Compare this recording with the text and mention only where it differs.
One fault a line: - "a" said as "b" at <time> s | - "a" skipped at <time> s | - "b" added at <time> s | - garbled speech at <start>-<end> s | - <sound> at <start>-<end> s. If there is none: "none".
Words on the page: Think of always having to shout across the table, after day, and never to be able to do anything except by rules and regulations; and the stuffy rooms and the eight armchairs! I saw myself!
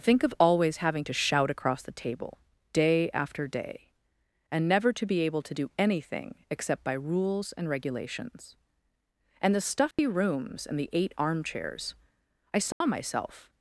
- "day" added at 2.7 s
- dropout at 9.9-10.0 s
- dropout at 12.7-12.8 s